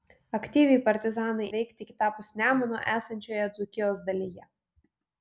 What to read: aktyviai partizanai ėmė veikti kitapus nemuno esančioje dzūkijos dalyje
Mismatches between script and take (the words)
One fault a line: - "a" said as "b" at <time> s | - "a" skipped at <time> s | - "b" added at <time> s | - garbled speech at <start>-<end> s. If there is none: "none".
- "ėmė" skipped at 1.5 s